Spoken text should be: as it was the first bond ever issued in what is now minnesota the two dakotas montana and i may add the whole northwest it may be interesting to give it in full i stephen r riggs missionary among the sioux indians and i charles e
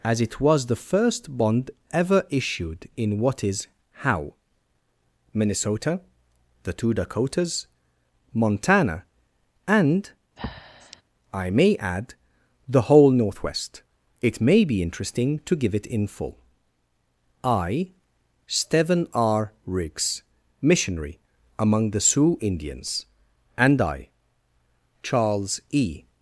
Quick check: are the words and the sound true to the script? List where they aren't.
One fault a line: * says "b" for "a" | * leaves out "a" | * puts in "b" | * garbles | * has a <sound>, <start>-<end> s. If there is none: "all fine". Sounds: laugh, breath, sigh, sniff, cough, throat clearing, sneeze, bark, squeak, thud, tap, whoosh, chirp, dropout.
* says "how" for "now"
* has a breath, 10.4-11.0 s